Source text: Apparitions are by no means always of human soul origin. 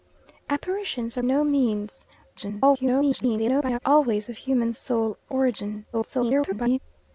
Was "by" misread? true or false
true